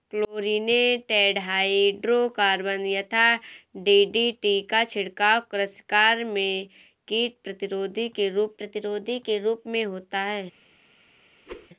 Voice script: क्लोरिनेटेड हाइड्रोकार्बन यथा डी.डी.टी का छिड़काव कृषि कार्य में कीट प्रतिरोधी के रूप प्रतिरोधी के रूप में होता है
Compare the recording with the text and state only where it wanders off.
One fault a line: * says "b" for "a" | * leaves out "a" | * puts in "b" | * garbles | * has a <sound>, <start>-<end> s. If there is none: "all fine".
* has a whoosh, 11.5-11.7 s